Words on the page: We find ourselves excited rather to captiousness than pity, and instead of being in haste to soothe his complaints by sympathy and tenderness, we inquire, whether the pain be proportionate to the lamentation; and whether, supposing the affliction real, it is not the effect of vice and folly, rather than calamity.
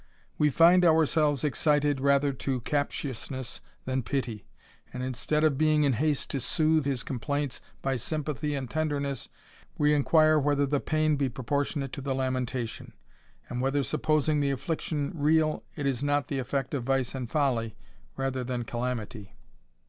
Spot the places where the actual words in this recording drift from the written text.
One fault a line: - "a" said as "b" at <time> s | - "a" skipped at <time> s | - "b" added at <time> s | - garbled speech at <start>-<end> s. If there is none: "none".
none